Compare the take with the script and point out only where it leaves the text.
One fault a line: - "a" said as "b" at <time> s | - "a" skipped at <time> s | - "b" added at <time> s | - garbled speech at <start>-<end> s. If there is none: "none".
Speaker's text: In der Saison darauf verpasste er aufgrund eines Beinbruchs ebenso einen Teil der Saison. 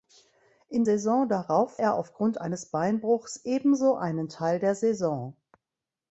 - "der" skipped at 0.8 s
- "verpasste" skipped at 1.8 s